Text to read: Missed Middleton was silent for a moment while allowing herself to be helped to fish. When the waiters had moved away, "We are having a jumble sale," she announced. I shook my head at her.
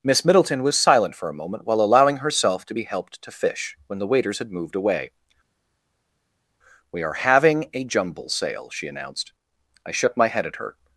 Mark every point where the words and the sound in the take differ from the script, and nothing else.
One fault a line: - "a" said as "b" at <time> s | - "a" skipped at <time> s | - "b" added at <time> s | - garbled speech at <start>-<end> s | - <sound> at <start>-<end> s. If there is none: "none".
- "Missed" said as "Miss" at 0.0 s